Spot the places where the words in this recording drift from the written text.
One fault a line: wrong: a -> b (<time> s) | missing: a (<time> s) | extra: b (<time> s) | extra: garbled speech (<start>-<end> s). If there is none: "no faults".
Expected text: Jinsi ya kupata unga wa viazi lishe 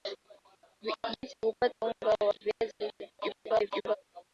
extra: garbled speech (3.2-4.0 s)